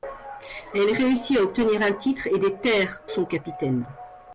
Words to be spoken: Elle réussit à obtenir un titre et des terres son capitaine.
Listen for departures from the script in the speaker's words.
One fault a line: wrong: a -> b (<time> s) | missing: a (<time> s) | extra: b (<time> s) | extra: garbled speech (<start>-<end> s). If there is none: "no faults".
no faults